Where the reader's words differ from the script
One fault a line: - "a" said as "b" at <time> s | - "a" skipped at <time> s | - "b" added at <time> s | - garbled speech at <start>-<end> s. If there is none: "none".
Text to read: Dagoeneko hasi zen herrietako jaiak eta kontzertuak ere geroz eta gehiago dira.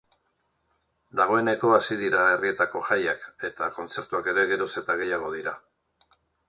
- "zen" said as "dira" at 2.0 s